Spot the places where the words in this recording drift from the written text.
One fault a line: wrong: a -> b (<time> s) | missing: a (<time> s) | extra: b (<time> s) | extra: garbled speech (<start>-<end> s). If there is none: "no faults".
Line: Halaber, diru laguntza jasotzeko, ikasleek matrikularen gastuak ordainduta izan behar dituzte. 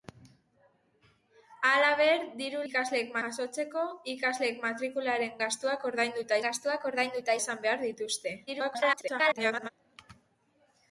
wrong: laguntza -> ikasleek (2.7 s)
extra: gastuak ordainduta (6.5 s)
extra: garbled speech (8.5-9.7 s)